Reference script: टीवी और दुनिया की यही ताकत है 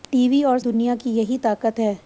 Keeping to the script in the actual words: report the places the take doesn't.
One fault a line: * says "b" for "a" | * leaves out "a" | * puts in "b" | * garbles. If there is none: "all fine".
all fine